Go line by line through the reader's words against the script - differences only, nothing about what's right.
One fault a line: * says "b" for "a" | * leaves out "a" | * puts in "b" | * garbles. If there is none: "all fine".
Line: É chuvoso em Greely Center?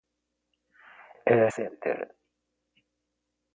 * leaves out "chuvoso em Greely"